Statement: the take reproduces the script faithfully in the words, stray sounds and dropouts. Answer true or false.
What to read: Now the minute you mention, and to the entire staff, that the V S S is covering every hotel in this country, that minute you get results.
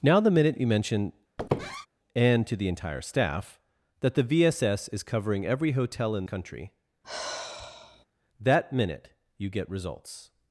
false